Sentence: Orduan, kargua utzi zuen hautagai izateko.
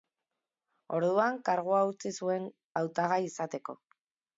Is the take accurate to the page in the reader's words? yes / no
yes